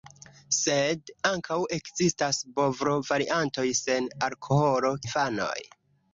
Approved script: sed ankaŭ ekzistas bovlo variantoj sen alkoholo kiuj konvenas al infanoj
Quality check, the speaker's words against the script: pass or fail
fail